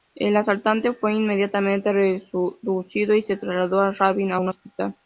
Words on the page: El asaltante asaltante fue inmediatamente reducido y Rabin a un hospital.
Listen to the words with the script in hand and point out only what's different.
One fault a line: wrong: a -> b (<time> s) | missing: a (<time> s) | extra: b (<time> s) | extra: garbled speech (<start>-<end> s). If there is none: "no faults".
missing: asaltante (0.9 s)
extra: se trasladó a (3.2 s)